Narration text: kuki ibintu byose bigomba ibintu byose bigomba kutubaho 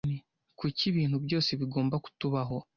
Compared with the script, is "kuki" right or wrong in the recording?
right